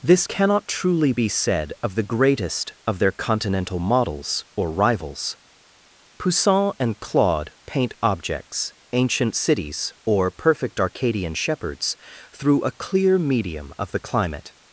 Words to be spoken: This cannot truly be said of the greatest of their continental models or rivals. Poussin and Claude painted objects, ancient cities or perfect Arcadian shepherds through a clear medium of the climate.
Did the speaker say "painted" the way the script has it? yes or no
no